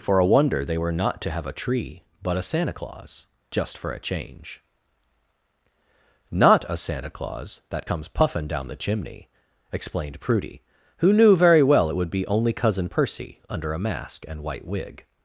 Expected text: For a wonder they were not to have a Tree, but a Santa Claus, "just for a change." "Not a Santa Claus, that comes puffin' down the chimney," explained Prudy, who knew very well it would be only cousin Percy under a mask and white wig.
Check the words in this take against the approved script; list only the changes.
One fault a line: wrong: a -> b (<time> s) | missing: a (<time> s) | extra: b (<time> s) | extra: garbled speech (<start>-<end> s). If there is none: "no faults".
no faults